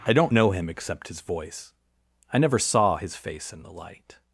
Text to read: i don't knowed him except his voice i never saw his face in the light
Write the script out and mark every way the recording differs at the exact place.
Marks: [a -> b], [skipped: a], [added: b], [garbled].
i don't [knowed -> know] him except his voice i never saw his face in the light